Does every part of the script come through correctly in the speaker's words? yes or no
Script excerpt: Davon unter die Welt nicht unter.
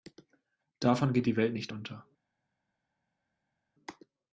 no